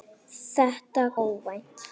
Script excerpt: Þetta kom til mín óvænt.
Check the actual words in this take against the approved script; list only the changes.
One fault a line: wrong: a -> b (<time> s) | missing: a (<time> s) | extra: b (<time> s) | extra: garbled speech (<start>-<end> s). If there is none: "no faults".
missing: kom til mín (1.0 s)